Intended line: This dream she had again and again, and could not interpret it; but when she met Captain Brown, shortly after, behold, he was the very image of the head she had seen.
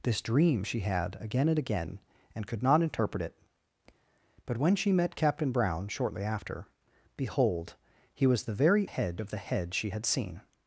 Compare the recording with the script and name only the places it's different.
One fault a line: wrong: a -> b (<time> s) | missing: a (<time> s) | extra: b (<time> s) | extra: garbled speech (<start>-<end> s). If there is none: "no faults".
wrong: image -> head (8.8 s)